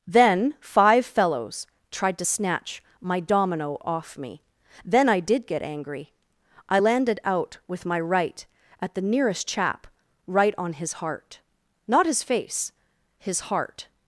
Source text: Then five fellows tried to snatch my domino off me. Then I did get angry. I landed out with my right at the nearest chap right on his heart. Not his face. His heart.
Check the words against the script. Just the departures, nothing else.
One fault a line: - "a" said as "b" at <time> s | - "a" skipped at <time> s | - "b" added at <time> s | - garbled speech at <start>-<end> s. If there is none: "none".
none